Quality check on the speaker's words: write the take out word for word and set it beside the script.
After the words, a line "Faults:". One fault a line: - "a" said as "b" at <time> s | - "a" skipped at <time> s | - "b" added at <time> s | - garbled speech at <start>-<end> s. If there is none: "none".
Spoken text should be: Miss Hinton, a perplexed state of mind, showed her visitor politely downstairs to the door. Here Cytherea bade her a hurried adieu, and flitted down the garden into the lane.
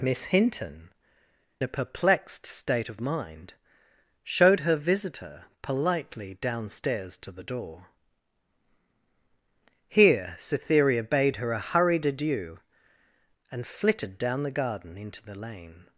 Miss Hinton, a perplexed state of mind, showed her visitor politely downstairs to the door. Here Cytherea bade her a hurried adieu, and flitted down the garden into the lane.
Faults:
none